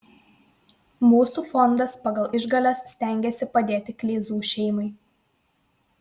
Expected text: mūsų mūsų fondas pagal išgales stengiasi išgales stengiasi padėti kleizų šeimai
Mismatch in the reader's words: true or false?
true